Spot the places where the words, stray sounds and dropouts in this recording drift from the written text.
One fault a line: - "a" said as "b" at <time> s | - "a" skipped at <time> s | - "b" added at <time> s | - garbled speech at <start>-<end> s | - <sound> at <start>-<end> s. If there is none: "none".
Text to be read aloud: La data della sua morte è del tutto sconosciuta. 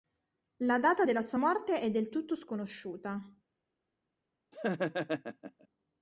- laugh at 4.5-5.7 s